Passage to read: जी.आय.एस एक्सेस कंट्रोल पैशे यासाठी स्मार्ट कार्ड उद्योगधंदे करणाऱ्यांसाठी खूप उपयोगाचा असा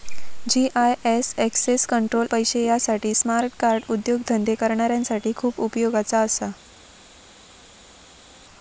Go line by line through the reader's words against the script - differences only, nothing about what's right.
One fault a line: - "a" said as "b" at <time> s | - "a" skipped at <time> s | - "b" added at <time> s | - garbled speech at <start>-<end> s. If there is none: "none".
none